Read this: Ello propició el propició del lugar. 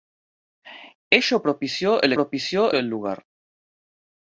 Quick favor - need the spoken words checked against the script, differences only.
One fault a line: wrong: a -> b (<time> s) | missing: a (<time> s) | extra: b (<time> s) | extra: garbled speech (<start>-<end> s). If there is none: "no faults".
no faults